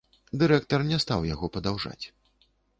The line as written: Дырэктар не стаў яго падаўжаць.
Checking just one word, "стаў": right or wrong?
right